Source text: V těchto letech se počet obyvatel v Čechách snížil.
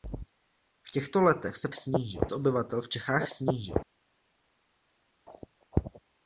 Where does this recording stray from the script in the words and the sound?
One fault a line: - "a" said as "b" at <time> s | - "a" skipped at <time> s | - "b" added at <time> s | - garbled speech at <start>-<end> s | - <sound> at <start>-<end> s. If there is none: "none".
- "počet" said as "snížil" at 1.7 s